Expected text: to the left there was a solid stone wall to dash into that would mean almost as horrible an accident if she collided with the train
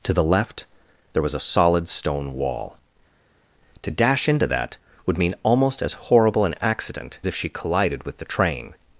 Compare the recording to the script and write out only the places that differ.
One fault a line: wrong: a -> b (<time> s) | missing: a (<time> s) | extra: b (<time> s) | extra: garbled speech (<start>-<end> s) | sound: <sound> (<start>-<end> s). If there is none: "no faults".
no faults